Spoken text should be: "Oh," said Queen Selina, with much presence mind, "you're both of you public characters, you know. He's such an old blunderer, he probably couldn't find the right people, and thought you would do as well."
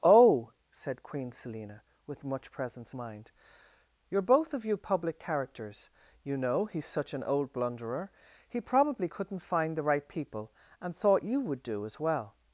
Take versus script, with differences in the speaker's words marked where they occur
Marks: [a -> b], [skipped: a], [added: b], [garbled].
"Oh," said Queen Selina, with much presence mind, "you're both of you public characters, you know. He's such an old blunderer, he probably couldn't find the right people, and thought you would do as well."